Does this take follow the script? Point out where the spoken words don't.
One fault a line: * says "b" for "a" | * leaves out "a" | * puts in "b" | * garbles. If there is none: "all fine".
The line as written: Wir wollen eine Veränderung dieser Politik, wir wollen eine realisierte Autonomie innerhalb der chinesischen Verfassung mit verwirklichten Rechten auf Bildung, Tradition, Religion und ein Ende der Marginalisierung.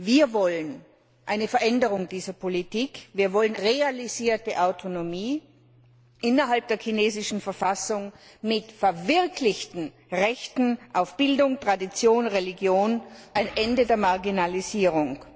* leaves out "eine"
* leaves out "und"